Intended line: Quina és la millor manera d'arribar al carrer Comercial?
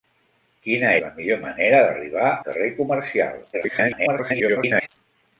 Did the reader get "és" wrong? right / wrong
wrong